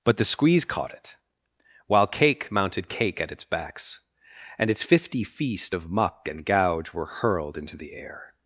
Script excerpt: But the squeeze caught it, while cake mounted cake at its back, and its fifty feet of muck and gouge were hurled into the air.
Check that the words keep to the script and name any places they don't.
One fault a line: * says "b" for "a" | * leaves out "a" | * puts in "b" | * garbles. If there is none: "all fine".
* says "backs" for "back"
* says "feast" for "feet"